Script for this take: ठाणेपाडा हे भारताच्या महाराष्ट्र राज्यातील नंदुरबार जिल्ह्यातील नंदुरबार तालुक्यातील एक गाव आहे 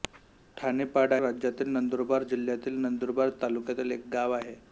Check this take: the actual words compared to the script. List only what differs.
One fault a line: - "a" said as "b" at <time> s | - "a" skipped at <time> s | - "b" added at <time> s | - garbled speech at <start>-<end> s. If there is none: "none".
- "हे भारताच्या महाराष्ट्र" skipped at 1.1 s